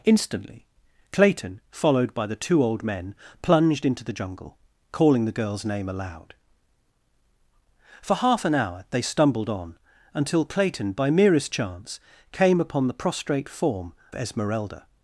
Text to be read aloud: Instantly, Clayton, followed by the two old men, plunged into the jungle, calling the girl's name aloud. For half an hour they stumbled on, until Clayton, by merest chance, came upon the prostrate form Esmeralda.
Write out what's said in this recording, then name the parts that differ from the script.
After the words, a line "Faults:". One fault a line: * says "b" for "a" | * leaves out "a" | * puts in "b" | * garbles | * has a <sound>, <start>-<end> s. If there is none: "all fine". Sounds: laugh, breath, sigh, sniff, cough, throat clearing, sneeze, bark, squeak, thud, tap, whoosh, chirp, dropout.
Instantly, Clayton, followed by the two old men, plunged into the jungle, calling the girl's name aloud. For half an hour they stumbled on, until Clayton, by merest chance, came upon the prostrate form Esmeralda.
Faults:
all fine